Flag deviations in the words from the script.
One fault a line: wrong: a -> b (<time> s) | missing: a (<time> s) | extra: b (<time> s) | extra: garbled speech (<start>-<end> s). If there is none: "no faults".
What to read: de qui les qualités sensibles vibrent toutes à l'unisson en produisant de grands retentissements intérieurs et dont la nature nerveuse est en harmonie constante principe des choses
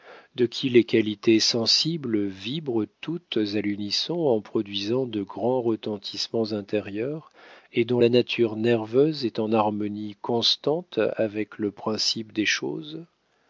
extra: avec le (11.2 s)